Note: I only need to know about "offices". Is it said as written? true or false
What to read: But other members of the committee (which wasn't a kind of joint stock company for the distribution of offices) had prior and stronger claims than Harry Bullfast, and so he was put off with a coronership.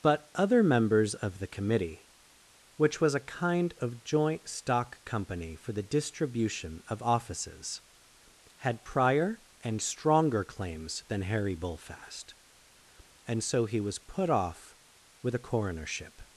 true